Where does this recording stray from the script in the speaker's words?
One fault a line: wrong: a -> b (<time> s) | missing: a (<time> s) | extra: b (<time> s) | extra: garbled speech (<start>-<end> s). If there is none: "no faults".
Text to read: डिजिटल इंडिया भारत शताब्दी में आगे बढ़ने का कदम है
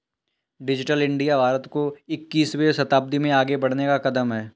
extra: को इक्कीसवें (1.7 s)